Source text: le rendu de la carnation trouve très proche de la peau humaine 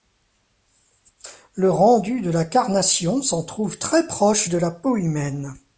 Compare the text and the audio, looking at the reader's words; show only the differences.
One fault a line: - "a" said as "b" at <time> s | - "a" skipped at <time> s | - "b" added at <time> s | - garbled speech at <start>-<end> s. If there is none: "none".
- "s'en" added at 3.2 s